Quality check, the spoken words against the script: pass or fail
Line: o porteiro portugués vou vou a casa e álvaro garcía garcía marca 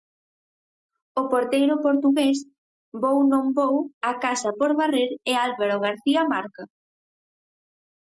fail